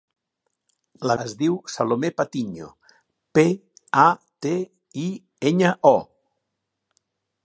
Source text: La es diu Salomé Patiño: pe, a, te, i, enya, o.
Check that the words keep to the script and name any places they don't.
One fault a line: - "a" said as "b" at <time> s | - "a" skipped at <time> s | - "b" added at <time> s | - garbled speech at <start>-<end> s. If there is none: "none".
none